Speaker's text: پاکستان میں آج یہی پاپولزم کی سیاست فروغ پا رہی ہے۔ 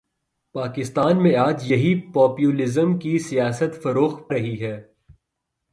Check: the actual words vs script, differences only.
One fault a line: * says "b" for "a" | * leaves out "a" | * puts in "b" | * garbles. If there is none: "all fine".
* leaves out "پا"